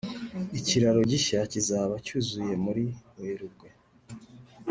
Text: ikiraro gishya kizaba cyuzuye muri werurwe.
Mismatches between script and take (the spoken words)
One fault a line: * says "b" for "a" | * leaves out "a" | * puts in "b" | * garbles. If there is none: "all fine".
all fine